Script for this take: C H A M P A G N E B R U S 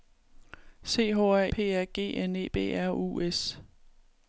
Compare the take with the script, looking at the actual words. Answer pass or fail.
fail